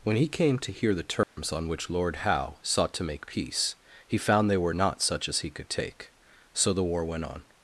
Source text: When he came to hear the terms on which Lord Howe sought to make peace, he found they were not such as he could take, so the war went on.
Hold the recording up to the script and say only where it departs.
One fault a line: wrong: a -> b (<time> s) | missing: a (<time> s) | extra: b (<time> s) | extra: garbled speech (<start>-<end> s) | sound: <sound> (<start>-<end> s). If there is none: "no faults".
sound: dropout (1.2-1.4 s)